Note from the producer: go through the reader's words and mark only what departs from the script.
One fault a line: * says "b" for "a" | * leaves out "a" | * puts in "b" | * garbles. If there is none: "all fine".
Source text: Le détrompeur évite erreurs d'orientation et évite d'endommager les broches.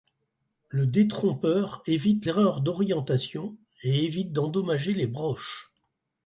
all fine